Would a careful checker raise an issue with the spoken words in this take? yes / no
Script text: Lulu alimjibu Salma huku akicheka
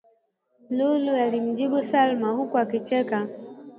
no